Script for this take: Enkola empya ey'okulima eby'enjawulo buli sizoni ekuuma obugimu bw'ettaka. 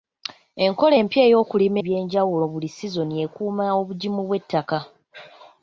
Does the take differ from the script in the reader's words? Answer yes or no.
no